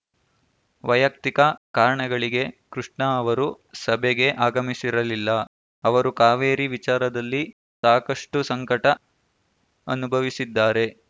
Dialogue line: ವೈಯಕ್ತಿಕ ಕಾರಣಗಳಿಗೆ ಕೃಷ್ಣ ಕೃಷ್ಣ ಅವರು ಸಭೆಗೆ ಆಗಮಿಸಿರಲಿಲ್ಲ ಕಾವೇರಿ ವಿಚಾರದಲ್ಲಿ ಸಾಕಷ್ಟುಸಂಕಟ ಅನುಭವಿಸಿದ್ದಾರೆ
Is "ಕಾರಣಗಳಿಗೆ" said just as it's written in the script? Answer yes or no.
yes